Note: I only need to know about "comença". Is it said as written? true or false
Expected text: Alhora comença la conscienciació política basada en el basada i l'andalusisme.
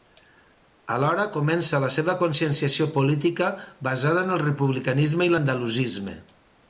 true